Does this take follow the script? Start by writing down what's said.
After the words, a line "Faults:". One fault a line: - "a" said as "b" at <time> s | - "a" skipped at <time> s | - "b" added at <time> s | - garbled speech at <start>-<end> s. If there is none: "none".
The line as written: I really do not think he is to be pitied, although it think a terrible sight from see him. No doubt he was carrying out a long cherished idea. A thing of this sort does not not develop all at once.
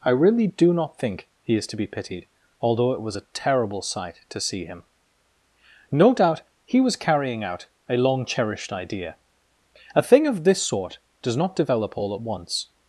I really do not think he is to be pitied, although it was a terrible sight to see him. No doubt he was carrying out a long cherished idea. A thing of this sort does not develop all at once.
Faults:
- "think" said as "was" at 3.0 s
- "from" said as "to" at 4.3 s
- "not" skipped at 11.6 s